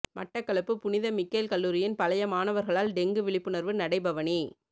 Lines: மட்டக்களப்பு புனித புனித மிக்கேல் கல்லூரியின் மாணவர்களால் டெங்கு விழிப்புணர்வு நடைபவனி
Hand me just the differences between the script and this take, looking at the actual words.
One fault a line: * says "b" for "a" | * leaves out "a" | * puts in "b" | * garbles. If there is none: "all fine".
* leaves out "புனித"
* puts in "பழைய"